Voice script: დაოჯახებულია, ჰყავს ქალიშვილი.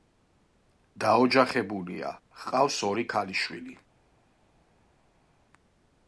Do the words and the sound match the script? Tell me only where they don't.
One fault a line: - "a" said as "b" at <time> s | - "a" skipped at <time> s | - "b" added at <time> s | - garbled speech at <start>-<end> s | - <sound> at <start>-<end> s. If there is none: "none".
- "ორი" added at 2.9 s